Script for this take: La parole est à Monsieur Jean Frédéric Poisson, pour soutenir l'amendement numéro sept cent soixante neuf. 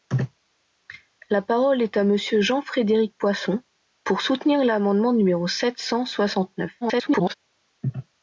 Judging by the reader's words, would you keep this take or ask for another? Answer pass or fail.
fail